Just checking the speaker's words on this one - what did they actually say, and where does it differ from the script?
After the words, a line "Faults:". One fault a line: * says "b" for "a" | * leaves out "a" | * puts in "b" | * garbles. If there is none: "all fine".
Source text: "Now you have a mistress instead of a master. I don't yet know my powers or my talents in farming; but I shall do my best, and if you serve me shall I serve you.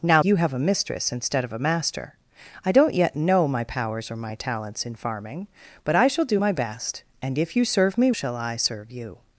"Now you have a mistress instead of a master. I don't yet know my powers or my talents in farming; but I shall do my best, and if you serve me shall I serve you.
Faults:
all fine